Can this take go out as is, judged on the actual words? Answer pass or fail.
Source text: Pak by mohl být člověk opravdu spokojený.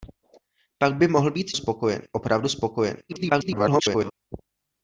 fail